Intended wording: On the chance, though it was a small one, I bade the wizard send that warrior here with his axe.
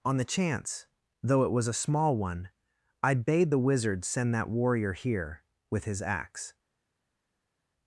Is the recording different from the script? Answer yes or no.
no